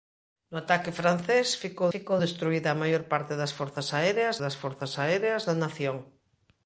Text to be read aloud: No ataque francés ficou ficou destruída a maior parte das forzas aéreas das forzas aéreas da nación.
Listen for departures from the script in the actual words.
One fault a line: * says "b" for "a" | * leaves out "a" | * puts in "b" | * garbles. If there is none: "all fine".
all fine